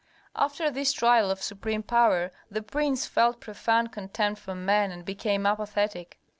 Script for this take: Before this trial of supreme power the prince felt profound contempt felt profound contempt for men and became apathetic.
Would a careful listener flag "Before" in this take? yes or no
yes